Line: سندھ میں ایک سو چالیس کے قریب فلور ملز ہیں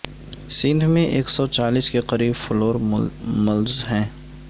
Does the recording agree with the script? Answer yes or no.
yes